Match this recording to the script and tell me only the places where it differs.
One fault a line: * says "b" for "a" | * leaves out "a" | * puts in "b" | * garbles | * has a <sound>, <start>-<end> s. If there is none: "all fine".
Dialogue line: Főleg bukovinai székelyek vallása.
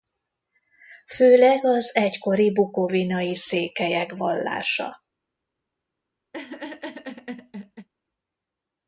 * puts in "az egykori"
* has a laugh, 6.3-7.9 s